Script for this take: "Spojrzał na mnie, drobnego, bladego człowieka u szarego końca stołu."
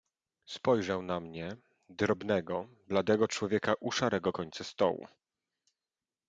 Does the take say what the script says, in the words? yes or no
yes